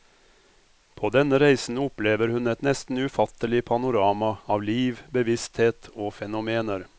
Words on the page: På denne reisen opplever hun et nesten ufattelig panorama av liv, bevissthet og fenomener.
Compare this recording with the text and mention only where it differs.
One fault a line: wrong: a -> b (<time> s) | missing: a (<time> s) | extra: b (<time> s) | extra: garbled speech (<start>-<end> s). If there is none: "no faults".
no faults